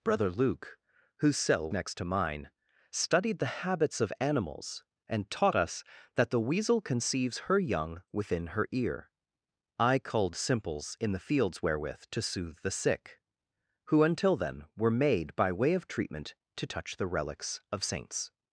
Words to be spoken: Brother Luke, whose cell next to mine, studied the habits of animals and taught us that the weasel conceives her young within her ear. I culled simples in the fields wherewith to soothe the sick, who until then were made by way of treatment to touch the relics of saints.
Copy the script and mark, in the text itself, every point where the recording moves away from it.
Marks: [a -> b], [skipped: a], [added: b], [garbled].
Brother Luke, whose cell next to mine, studied the habits of animals and taught us that the weasel conceives her young within her ear. I culled simples in the fields wherewith to soothe the sick, who until then were made by way of treatment to touch the relics of saints.